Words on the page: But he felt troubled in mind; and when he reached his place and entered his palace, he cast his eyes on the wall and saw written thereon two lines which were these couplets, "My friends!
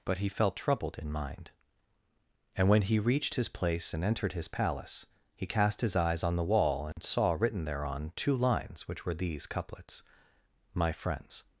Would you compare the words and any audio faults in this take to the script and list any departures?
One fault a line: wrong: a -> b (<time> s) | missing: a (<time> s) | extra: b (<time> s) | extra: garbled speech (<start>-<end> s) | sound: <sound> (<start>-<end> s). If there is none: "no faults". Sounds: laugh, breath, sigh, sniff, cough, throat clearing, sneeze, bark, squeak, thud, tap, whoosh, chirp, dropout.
sound: dropout (6.9-7.0 s)